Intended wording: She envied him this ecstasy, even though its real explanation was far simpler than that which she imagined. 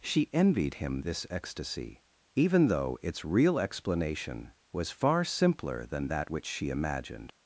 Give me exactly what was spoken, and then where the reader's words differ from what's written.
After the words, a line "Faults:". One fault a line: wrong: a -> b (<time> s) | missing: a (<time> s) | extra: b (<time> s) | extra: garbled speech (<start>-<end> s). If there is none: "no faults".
She envied him this ecstasy, even though its real explanation was far simpler than that which she imagined.
Faults:
no faults